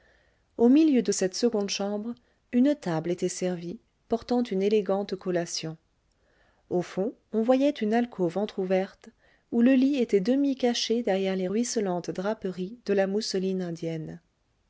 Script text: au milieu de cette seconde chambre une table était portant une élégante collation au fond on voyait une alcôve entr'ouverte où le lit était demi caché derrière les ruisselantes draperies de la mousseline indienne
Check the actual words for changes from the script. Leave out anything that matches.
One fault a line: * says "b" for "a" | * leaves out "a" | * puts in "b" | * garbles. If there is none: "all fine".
* puts in "servie"